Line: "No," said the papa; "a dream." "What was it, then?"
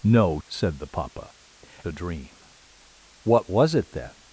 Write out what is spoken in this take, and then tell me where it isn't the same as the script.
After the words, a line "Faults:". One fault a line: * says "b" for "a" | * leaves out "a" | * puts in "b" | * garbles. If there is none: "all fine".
"No," said the papa; "a dream." "What was it, then?"
Faults:
all fine